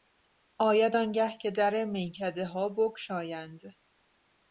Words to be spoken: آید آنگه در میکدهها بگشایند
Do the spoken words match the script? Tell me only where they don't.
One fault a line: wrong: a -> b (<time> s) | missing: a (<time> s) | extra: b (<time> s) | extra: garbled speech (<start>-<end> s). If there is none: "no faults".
extra: که (1.4 s)